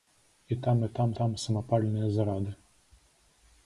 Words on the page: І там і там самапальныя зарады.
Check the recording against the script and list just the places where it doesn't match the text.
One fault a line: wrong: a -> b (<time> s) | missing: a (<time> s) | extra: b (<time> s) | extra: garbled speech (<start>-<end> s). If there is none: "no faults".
extra: там (1.2 s)